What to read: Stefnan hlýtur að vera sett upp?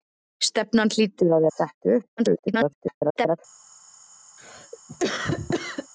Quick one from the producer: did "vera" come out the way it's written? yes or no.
no